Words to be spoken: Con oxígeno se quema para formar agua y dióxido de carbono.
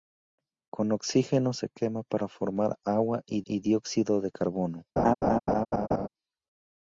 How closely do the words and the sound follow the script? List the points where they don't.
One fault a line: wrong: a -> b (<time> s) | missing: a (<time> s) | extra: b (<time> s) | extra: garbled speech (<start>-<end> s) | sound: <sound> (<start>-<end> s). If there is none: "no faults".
extra: y (3.5 s)
sound: laugh (5.0-6.1 s)